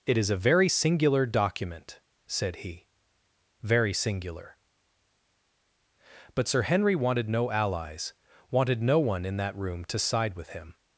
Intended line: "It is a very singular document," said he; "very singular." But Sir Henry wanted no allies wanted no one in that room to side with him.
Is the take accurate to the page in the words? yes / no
yes